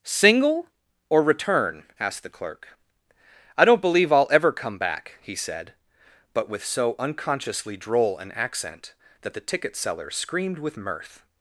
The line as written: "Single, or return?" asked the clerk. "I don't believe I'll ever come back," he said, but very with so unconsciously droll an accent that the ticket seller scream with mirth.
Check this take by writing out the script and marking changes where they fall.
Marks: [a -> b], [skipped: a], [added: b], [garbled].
"Single, or return?" asked the clerk. "I don't believe I'll ever come back," he said, but [skipped: very] with so unconsciously droll an accent that the ticket seller [scream -> screamed] with mirth.